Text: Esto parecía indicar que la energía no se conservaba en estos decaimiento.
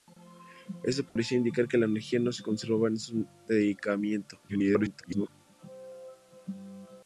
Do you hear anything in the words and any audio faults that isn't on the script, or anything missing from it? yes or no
yes